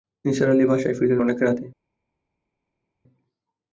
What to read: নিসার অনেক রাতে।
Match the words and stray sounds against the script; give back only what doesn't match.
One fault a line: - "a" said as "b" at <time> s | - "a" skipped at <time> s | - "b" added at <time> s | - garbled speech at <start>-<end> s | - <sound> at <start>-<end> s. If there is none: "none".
- "আলি বাসায় ফিরলেন" added at 0.5 s